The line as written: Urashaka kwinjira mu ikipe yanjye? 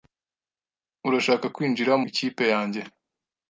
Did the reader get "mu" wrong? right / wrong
wrong